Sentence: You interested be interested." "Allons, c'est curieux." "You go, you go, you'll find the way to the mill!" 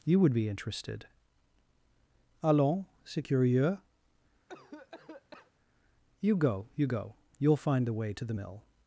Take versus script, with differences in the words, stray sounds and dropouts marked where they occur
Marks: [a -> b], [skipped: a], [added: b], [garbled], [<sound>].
You [interested -> would] be interested." "Allons, c'est curieux." [cough] "You go, you go, you'll find the way to the mill!"